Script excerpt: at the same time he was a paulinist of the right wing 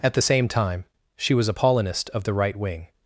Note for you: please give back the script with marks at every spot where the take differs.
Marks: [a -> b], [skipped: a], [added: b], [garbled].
at the same time [he -> she] was a paulinist of the right wing